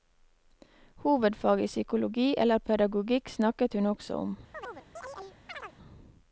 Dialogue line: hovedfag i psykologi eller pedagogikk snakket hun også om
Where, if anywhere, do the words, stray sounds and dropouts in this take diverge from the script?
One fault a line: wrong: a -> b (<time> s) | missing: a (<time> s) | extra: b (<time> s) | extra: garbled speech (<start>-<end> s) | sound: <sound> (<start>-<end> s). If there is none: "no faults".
sound: chirp (4.5-5.8 s)